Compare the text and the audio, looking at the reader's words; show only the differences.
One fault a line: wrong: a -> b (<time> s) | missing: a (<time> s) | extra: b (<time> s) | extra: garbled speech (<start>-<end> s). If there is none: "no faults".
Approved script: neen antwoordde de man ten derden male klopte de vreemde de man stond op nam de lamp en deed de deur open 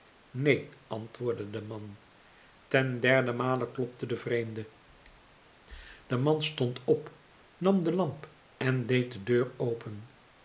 no faults